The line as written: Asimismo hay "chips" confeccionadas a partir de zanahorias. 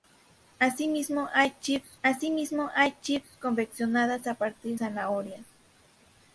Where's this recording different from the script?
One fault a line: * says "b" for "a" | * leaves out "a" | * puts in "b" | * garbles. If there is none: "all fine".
* puts in "asimismo hay chips"
* leaves out "de"